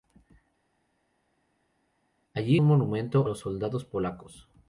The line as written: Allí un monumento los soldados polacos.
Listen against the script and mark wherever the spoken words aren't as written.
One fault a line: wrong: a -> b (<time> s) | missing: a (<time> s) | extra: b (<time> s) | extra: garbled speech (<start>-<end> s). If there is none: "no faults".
no faults